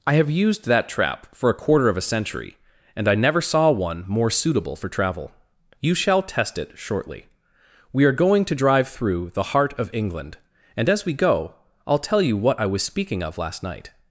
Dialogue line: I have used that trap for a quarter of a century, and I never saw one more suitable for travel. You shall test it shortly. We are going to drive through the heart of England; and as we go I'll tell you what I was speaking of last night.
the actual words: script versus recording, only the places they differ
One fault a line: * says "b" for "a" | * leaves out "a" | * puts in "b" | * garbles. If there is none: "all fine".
all fine